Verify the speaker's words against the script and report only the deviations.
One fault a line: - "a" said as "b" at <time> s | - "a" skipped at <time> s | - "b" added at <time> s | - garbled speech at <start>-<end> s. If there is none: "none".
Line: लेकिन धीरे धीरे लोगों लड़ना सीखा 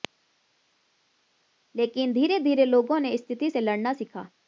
- "ने स्थिति से" added at 3.0 s